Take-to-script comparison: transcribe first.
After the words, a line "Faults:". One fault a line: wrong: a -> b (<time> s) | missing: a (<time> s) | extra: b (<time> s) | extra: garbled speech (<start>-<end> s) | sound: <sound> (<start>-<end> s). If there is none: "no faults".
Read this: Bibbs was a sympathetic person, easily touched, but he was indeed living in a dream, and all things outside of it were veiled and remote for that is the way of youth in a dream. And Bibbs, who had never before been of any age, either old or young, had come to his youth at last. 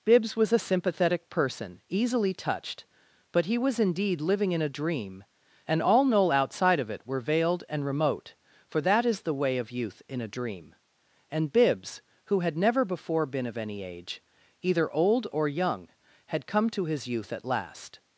Bibbs was a sympathetic person, easily touched, but he was indeed living in a dream, and all knoll outside of it were veiled and remote for that is the way of youth in a dream. And Bibbs, who had never before been of any age, either old or young, had come to his youth at last.
Faults:
wrong: things -> knoll (6.0 s)